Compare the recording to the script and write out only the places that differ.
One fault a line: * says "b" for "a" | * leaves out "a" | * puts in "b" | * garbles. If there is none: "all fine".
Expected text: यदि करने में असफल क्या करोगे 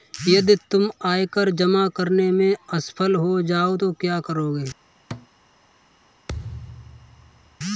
* puts in "तुम आयकर जमा"
* puts in "हो जाओ तो"